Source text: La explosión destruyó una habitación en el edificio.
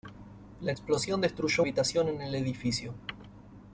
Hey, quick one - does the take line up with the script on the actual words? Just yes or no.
no